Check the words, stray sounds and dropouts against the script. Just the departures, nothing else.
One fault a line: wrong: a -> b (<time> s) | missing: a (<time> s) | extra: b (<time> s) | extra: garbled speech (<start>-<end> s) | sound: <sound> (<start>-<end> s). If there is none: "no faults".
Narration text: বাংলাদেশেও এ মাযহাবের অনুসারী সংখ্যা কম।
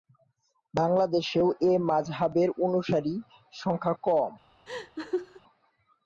sound: laugh (4.7-5.4 s)